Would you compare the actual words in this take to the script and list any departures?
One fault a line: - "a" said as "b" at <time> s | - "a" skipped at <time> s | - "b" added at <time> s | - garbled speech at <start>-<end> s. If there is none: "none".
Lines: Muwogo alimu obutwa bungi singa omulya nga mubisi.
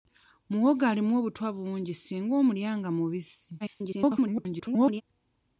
- garbled speech at 3.6-5.0 s